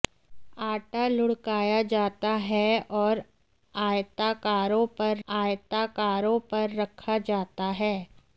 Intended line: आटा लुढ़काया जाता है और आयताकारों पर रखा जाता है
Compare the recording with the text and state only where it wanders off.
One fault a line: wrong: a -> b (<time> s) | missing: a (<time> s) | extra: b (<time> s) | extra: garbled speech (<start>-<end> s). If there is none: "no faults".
extra: आयताकारों पर (5.3 s)